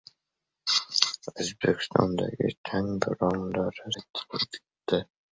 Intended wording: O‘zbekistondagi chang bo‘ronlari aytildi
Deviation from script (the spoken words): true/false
false